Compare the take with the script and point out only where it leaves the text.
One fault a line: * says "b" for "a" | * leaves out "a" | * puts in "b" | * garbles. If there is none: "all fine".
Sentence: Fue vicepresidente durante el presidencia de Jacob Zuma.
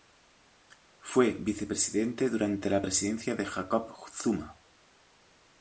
* says "la" for "el"